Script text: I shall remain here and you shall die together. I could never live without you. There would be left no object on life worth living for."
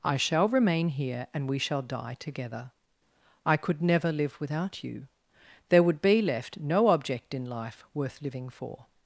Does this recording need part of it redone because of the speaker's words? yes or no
yes